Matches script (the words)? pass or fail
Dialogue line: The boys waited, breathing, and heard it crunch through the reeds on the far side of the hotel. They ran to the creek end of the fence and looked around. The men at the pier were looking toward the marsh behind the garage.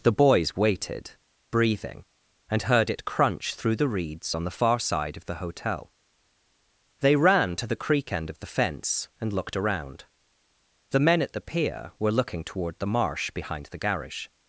pass